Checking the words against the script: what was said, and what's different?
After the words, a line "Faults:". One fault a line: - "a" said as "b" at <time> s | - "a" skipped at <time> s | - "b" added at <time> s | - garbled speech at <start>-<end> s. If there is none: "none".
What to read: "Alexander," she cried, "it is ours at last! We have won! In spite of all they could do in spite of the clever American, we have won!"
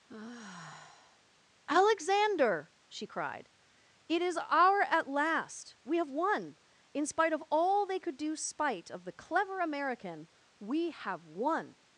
"Alexander," she cried, "it is our at last! We have won! In spite of all they could do spite of the clever American, we have won!"
Faults:
- "ours" said as "our" at 4.4 s
- "in" skipped at 8.4 s